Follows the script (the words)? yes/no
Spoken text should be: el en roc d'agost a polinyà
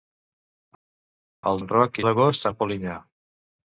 yes